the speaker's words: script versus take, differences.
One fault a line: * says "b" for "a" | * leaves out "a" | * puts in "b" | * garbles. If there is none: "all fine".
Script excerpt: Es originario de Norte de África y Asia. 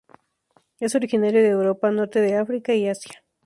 * puts in "Europa"